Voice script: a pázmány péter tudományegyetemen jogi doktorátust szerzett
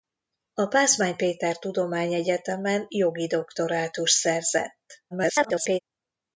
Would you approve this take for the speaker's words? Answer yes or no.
no